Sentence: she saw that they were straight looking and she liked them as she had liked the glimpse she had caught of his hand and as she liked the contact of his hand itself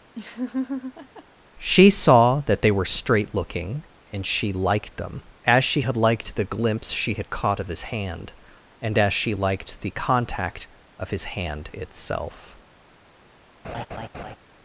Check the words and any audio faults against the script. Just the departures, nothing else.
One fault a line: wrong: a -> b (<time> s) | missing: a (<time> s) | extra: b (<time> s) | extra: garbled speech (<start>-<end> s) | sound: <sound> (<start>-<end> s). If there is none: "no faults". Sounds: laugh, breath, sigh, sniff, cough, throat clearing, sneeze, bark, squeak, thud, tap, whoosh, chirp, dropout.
sound: laugh (0.1-1.2 s)
sound: laugh (13.6-14.4 s)